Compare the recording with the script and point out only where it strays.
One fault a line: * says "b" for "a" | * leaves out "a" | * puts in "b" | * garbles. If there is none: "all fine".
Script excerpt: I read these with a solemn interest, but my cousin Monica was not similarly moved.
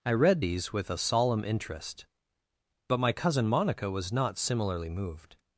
all fine